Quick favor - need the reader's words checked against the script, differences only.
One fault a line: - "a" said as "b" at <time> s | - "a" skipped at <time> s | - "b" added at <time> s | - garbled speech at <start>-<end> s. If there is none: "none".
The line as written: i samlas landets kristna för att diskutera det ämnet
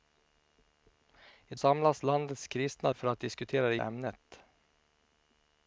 none